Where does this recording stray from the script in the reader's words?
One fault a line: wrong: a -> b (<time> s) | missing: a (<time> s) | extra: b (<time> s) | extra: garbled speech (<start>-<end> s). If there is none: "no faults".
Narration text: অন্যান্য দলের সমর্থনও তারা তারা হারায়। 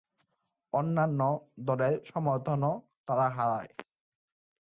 missing: তারা (3.2 s)